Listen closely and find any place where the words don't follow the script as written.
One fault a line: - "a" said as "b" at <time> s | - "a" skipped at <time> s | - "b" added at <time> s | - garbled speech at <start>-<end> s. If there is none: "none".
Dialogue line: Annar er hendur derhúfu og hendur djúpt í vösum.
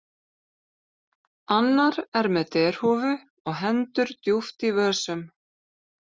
- "hendur" said as "með" at 2.4 s